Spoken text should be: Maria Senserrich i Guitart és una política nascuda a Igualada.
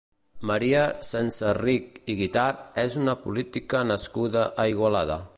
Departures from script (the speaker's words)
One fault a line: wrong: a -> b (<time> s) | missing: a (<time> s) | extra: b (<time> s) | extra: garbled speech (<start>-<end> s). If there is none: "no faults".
no faults